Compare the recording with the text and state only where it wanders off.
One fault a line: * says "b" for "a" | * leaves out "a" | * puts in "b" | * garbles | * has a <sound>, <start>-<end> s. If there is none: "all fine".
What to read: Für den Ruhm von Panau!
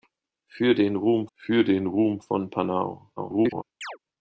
* puts in "für den Ruhm"
* garbles
* has a chirp, 3.8-4.0 s